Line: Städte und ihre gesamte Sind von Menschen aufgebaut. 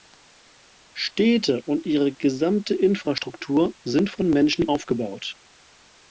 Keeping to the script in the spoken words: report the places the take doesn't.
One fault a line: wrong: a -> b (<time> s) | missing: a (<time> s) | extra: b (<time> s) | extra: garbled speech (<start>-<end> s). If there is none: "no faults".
extra: Infrastruktur (2.7 s)